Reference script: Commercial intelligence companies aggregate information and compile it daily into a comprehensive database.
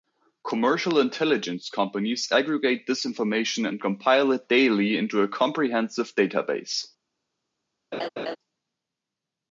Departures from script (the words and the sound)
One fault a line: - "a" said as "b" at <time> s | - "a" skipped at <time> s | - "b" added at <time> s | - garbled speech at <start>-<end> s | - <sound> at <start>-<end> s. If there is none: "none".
- "this" added at 2.9 s
- laugh at 7.9-8.4 s